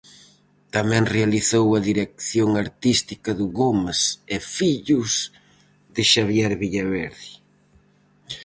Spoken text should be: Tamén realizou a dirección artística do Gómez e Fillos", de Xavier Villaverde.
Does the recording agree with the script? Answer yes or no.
yes